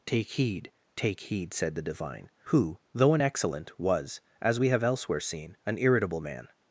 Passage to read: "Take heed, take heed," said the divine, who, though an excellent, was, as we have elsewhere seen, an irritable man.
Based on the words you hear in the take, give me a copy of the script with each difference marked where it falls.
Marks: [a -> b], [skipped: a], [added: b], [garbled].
"Take heed, take heed," said the divine, who, though an excellent, was, as we have elsewhere seen, an irritable man.